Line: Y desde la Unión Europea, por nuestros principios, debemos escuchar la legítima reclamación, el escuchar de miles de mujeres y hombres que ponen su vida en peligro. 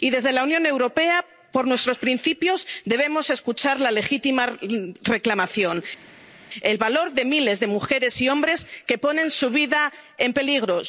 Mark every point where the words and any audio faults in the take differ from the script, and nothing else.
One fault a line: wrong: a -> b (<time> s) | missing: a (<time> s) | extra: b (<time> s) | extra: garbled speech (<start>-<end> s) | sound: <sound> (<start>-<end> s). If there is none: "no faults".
wrong: escuchar -> valor (6.8 s)